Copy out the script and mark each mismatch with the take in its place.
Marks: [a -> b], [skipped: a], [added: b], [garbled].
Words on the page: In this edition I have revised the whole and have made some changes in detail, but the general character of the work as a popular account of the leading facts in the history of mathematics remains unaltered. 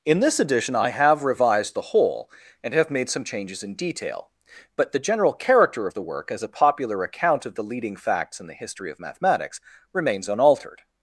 In this edition I have revised the whole and have made some changes in detail, but the general character of the work as a popular account of the leading facts in the history of mathematics remains unaltered.